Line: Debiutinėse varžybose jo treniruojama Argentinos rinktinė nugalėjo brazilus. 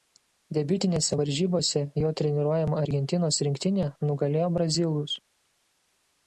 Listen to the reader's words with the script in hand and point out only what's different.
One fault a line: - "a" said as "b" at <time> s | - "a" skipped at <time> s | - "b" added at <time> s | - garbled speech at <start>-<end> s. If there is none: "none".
none